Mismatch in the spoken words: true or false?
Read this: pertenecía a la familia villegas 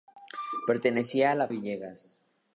true